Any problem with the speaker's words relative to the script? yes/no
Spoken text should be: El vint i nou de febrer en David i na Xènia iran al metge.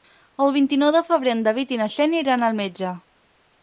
no